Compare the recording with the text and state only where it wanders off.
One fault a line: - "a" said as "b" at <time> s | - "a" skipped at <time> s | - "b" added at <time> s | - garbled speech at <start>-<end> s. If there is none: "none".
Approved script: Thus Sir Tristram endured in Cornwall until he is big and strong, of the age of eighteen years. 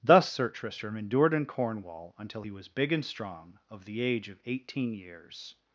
- "is" said as "was" at 2.5 s